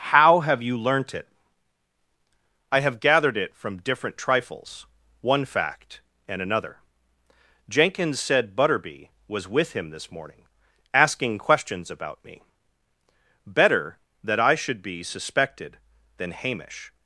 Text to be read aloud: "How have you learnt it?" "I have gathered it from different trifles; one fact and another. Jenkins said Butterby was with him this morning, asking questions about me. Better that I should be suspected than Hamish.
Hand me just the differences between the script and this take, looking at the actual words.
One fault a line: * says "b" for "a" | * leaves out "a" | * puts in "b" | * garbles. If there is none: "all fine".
all fine